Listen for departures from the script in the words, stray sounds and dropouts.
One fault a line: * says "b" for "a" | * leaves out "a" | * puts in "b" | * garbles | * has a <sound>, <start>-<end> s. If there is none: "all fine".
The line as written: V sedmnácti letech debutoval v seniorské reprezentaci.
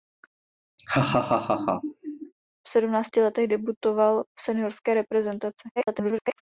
* has a laugh, 0.8-2.3 s
* garbles